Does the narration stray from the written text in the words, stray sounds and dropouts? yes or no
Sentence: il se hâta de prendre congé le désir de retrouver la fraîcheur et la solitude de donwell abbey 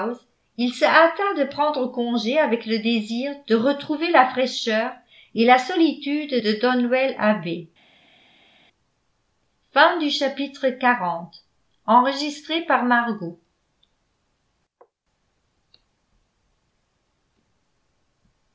yes